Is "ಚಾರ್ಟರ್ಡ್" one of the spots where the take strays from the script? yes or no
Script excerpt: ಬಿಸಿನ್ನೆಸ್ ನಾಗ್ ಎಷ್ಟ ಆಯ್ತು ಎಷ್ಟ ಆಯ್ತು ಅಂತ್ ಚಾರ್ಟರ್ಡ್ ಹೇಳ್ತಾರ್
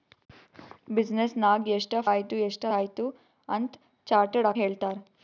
no